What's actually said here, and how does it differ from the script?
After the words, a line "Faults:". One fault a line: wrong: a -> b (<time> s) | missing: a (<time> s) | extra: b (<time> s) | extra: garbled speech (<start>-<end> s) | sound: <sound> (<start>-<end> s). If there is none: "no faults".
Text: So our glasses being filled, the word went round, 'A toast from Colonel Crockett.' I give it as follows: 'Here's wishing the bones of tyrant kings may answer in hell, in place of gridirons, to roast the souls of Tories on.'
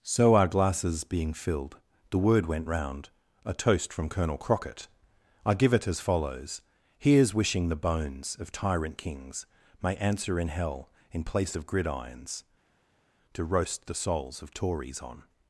So our glasses being filled, the word went round, 'A toast from Colonel Crockett.' I give it as follows: 'Here's wishing the bones of tyrant kings may answer in hell, in place of gridirons, to roast the souls of Tories on.'
Faults:
no faults